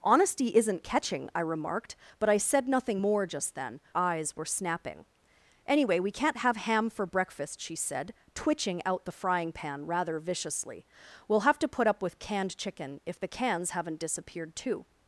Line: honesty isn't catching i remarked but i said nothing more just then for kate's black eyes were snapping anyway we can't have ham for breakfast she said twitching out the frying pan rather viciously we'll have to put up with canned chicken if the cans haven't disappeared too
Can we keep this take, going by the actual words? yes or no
no